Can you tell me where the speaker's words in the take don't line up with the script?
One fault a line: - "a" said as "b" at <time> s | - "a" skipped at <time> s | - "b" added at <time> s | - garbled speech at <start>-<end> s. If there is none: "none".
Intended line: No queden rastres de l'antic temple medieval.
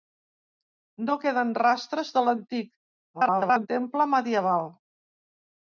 - garbled speech at 3.1-3.7 s